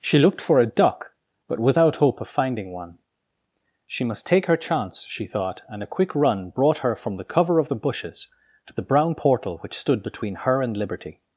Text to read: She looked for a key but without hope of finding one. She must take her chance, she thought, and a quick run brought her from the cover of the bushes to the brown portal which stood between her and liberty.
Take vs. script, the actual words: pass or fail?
fail